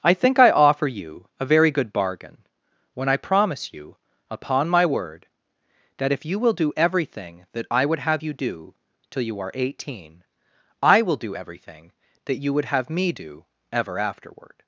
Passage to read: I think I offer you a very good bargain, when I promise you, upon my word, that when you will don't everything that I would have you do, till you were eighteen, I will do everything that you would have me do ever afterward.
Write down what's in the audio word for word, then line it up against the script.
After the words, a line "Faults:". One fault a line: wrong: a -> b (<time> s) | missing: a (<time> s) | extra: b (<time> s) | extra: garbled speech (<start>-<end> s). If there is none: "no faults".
I think I offer you a very good bargain, when I promise you, upon my word, that if you will do everything that I would have you do, till you are eighteen, I will do everything that you would have me do ever afterward.
Faults:
wrong: when -> if (6.1 s)
wrong: don't -> do (6.5 s)
wrong: were -> are (9.4 s)